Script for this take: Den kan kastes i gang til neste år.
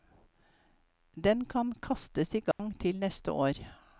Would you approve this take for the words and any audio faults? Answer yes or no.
no